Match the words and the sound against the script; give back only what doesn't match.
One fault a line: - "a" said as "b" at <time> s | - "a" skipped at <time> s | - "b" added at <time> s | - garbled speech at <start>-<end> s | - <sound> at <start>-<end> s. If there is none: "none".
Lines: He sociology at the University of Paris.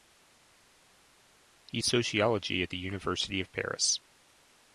none